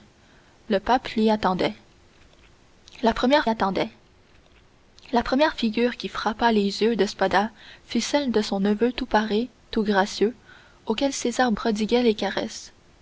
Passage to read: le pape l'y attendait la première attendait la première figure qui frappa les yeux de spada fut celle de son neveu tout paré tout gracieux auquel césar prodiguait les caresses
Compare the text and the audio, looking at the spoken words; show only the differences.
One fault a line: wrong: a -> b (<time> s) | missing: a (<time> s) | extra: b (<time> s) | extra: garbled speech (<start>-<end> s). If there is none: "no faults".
no faults